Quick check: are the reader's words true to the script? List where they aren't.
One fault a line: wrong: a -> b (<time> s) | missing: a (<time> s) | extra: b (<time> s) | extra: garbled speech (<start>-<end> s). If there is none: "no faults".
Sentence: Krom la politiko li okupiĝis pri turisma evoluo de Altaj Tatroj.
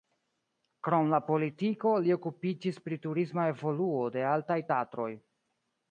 no faults